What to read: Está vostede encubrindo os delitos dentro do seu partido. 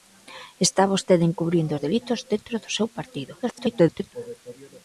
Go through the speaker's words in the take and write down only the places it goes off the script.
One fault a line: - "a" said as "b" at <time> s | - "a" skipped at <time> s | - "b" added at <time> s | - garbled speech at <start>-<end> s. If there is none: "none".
- garbled speech at 3.4-4.1 s